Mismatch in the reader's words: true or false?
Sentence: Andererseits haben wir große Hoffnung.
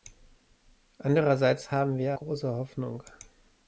false